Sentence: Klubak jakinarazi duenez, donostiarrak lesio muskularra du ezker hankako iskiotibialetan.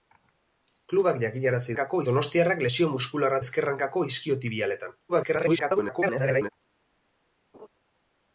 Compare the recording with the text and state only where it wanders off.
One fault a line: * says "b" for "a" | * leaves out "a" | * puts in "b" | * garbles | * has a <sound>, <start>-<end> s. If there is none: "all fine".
* says "hankako" for "duenez"
* leaves out "du"
* garbles
* has a laugh, 7.5-7.7 s